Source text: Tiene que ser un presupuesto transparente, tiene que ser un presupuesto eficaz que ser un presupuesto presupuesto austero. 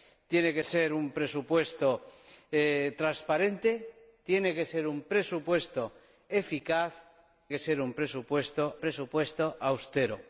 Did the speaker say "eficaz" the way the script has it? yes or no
yes